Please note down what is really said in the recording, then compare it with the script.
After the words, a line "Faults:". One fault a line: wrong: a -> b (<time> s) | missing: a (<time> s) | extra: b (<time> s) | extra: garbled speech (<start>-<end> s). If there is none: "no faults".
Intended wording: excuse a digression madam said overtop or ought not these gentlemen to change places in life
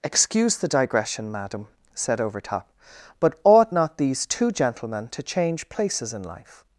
excuse the digression madam said overtop but ought not these two gentlemen to change places in life
Faults:
wrong: a -> the (0.6 s)
wrong: or -> but (3.2 s)
extra: two (4.3 s)